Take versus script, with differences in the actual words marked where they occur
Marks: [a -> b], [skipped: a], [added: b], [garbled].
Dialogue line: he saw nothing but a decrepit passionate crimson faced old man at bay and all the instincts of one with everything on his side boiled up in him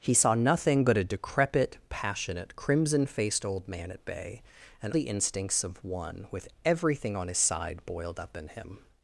he saw nothing but a decrepit passionate crimson faced old man at bay and [skipped: all] the instincts of one with everything on his side boiled up in him